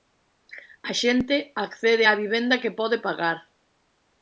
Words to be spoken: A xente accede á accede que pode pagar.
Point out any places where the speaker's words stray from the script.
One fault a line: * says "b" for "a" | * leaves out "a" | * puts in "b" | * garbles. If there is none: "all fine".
* says "vivenda" for "accede"